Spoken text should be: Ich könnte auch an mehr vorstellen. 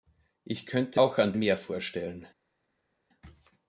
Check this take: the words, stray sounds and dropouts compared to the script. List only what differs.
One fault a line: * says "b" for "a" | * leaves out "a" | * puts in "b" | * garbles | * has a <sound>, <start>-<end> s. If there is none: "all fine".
all fine